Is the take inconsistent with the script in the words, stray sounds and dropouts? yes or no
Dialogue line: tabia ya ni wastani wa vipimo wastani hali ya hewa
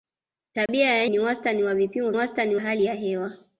yes